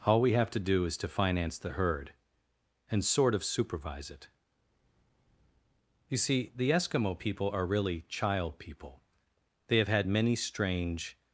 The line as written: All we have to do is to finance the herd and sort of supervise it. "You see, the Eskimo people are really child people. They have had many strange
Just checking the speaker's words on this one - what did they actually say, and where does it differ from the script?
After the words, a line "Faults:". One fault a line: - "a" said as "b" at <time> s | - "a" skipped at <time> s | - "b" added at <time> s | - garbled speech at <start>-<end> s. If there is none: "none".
All we have to do is to finance the herd and sort of supervise it. "You see, the Eskimo people are really child people. They have had many strange
Faults:
none